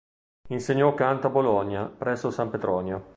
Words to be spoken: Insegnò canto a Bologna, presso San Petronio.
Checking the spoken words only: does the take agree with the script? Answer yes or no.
yes